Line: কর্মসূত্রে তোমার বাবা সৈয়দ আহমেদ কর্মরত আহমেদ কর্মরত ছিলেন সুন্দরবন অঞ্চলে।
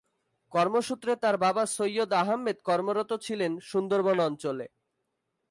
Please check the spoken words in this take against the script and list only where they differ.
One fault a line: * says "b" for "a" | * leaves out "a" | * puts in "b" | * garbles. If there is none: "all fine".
* says "তার" for "তোমার"
* leaves out "আহমেদ কর্মরত"